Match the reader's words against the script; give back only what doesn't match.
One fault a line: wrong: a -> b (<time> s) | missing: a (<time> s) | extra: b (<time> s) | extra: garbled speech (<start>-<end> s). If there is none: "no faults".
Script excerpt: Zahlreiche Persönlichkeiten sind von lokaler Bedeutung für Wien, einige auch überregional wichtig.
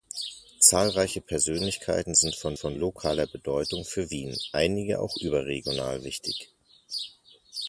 extra: von (2.5 s)